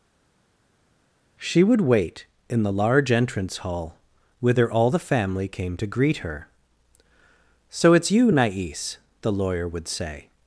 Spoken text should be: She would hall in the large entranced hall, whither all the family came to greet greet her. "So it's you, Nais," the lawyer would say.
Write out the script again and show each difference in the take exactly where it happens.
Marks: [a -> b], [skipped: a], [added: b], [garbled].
She would [hall -> wait] in the large [entranced -> entrance] hall, whither all the family came to greet [skipped: greet] her. "So it's you, Nais," the lawyer would say.